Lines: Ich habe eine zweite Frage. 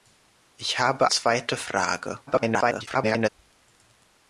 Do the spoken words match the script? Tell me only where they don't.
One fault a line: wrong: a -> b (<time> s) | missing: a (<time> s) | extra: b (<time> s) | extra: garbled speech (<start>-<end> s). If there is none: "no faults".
missing: eine (1.1 s)
extra: garbled speech (2.3-3.3 s)